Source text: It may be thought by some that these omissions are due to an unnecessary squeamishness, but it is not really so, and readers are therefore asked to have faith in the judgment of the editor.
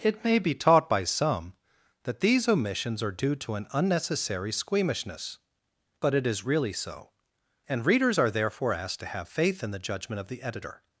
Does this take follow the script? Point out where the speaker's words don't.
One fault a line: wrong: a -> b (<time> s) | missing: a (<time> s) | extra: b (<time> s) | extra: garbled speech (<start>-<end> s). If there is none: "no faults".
wrong: thought -> taught (0.6 s)
missing: not (6.4 s)